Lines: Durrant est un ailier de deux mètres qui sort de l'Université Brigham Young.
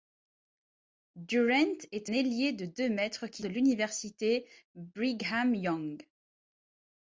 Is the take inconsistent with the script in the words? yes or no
yes